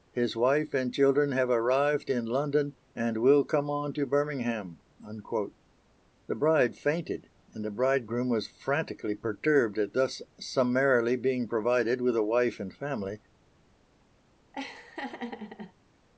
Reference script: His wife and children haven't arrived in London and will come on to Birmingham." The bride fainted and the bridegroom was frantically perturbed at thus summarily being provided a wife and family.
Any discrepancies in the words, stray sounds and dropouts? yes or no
yes